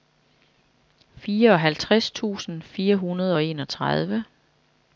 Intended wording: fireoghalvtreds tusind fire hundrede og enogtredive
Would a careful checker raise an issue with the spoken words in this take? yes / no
no